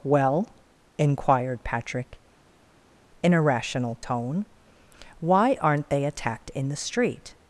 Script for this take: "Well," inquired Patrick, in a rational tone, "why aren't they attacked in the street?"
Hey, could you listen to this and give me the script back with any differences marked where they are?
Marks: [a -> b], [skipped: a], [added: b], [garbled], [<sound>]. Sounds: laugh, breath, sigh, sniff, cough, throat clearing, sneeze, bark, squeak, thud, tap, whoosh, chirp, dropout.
"Well," inquired Patrick, in a rational tone, "why aren't they attacked in the street?"